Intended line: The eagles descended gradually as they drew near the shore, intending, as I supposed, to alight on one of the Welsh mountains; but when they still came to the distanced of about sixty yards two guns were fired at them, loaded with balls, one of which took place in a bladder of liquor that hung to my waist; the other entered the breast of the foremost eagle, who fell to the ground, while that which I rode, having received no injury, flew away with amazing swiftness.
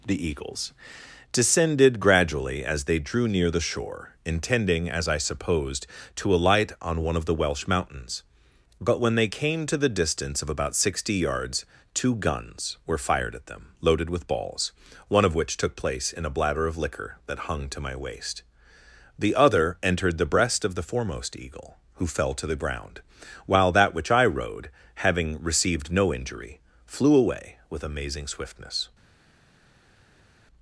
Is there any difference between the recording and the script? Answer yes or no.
yes